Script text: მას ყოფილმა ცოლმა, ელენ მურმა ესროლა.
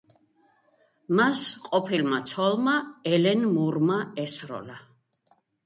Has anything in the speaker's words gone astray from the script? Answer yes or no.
no